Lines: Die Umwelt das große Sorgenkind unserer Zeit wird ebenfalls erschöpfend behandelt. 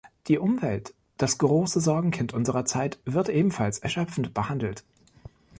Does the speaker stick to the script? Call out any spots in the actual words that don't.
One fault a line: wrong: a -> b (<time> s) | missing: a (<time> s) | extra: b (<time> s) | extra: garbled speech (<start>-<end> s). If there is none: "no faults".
no faults